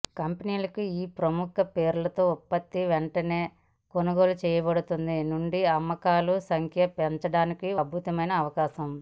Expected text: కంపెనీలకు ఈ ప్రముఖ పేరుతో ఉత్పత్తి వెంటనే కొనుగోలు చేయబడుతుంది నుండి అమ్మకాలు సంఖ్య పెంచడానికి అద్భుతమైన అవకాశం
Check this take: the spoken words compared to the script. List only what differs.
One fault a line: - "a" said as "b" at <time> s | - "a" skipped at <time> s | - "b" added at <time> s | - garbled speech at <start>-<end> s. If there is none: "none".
none